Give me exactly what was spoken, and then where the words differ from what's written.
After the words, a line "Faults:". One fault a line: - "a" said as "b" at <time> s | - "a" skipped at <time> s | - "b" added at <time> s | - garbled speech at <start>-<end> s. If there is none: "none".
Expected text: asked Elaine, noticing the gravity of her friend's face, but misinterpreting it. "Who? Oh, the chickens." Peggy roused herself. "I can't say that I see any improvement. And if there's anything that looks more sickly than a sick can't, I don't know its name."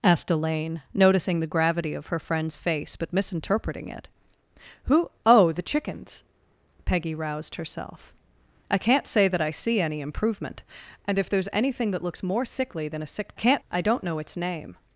asked Elaine, noticing the gravity of her friend's face, but misinterpreting it. "Who? Oh, the chickens." Peggy roused herself. "I can't say that I see any improvement. And if there's anything that looks more sickly than a sick can't, I don't know its name."
Faults:
none